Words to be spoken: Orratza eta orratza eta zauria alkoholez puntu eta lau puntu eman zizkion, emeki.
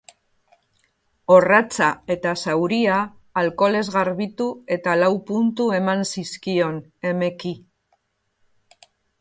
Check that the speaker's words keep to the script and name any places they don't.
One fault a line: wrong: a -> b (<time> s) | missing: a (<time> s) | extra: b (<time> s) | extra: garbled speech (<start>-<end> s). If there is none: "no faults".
missing: orratza eta (2.3 s)
wrong: puntu -> garbitu (4.0 s)